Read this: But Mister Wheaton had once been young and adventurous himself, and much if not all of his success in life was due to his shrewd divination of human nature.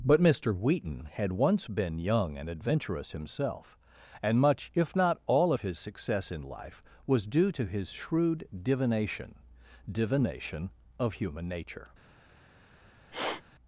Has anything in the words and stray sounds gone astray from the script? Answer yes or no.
yes